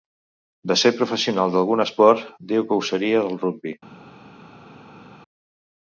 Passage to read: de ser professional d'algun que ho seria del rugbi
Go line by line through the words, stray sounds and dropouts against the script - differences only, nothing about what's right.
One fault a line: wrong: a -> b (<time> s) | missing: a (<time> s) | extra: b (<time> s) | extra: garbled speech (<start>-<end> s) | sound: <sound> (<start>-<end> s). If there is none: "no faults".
extra: esport diu (1.9 s)